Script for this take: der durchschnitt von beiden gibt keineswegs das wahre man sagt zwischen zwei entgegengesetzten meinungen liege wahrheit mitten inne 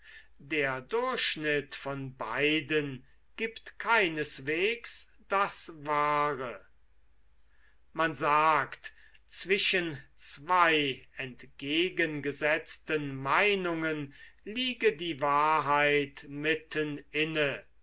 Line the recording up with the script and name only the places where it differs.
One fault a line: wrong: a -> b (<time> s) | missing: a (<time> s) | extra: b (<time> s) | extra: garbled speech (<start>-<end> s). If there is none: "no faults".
extra: die (15.0 s)